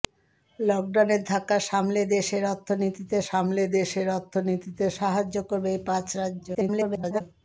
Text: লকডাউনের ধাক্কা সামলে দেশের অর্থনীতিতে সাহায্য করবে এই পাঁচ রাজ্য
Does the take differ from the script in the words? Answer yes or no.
yes